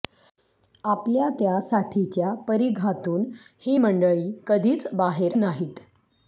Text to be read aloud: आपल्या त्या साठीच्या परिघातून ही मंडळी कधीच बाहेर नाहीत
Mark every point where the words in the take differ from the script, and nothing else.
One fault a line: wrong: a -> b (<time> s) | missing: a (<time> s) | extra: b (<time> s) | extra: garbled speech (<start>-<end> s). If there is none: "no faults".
no faults